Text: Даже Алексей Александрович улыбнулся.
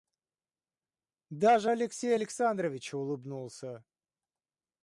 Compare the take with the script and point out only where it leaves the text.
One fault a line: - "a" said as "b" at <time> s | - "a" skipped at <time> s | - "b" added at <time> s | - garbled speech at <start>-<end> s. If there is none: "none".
none